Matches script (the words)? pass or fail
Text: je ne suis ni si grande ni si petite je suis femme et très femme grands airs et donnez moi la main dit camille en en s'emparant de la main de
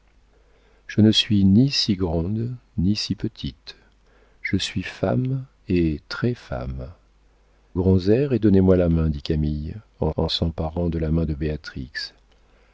pass